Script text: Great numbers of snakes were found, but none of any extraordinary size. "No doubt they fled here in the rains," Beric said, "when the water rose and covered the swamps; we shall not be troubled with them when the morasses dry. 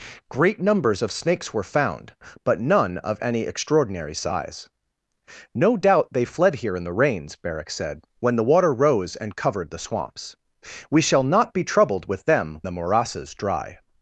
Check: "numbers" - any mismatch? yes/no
no